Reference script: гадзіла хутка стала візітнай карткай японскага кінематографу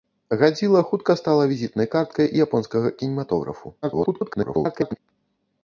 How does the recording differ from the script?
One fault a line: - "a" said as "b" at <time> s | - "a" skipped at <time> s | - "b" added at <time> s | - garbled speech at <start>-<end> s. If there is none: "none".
- garbled speech at 3.8-5.0 s